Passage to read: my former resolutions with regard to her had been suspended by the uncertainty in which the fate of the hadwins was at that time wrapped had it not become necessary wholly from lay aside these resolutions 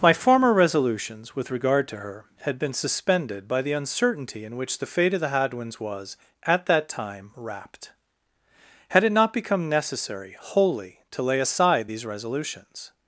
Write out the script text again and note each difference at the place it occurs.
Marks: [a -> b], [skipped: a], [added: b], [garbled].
my former resolutions with regard to her had been suspended by the uncertainty in which the fate of the hadwins was at that time wrapped had it not become necessary wholly [from -> to] lay aside these resolutions